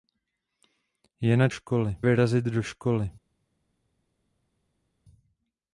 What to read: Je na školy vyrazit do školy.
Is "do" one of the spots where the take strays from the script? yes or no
no